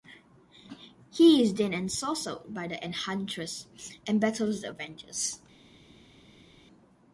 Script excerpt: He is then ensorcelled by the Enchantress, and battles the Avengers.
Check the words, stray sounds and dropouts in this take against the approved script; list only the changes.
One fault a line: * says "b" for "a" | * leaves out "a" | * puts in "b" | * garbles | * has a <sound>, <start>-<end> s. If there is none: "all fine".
all fine